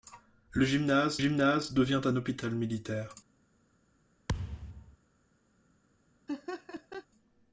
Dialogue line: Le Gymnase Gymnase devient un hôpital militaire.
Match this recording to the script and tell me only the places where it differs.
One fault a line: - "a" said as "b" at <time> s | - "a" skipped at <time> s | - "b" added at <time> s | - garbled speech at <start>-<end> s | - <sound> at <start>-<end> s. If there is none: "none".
- thud at 4.3-5.0 s
- laugh at 6.3-7.1 s